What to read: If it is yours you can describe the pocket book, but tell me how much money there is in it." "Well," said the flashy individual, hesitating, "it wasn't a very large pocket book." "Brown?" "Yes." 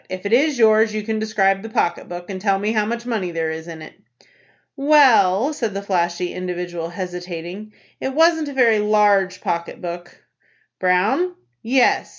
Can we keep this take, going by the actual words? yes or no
no